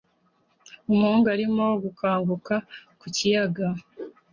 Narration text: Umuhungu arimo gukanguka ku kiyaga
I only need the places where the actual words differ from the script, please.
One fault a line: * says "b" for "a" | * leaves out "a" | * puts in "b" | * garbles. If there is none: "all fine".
all fine